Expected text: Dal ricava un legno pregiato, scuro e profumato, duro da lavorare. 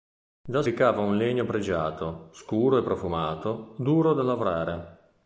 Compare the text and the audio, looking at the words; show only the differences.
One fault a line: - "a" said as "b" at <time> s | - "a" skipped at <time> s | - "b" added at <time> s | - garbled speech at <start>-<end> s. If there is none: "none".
none